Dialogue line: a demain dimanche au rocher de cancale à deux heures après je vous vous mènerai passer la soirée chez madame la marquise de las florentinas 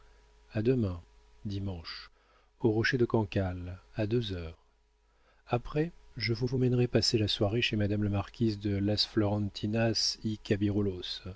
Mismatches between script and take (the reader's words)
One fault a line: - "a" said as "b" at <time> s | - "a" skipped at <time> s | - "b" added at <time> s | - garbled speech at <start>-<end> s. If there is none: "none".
none